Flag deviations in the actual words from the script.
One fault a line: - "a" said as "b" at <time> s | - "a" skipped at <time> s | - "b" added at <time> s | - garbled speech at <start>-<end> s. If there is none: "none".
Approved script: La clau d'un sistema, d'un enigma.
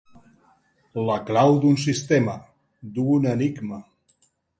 none